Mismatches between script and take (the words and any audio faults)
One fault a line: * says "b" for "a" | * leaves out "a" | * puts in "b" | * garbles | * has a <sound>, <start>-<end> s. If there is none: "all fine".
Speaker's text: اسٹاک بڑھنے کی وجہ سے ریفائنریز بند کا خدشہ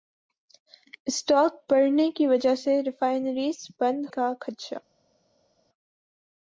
all fine